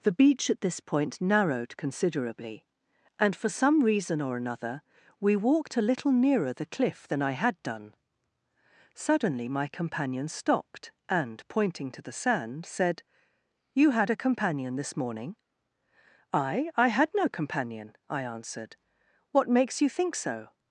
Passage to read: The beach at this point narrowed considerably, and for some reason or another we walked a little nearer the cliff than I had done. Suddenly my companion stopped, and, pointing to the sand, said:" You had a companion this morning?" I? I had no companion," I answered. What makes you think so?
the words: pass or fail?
pass